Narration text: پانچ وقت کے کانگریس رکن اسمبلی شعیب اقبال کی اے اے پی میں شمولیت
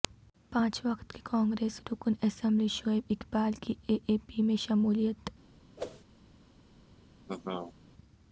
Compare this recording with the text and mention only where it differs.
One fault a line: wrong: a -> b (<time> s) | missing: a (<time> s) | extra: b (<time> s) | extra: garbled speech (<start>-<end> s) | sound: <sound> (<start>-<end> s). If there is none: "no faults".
sound: whoosh (5.8-6.0 s)
sound: laugh (7.3-7.7 s)